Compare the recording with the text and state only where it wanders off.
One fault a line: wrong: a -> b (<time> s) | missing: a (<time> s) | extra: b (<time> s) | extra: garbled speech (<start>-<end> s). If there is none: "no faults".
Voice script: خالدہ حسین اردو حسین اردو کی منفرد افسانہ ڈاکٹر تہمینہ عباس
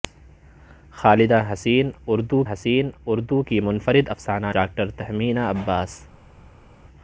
no faults